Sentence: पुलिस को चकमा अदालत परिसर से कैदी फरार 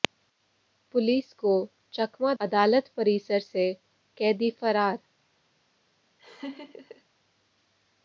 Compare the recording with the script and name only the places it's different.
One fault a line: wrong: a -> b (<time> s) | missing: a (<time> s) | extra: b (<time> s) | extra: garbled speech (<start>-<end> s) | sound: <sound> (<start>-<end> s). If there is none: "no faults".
sound: laugh (6.2-7.0 s)